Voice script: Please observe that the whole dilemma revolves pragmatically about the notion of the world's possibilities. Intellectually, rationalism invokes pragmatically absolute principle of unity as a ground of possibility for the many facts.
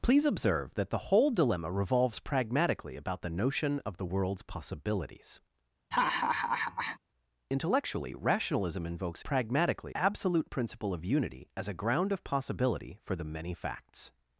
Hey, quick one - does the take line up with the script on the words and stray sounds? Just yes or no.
no